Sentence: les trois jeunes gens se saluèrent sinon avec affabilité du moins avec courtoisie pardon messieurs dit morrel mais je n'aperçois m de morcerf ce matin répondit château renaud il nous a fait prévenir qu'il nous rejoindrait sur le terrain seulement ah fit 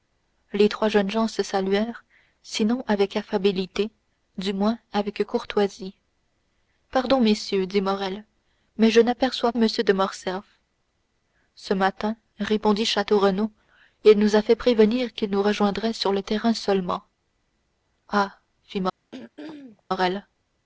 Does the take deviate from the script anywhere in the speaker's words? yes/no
no